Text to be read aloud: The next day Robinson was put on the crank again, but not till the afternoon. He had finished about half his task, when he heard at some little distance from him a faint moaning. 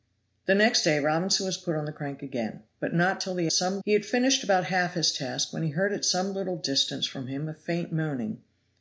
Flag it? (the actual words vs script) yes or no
yes